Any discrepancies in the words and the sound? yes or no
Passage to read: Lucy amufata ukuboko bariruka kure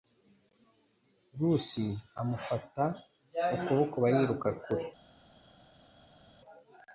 no